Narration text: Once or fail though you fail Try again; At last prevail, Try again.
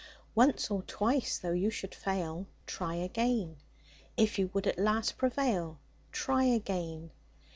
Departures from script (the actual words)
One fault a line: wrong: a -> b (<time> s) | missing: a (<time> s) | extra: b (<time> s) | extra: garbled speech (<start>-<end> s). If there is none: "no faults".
wrong: fail -> twice (0.8 s)
extra: should (1.7 s)
extra: If you would (4.2 s)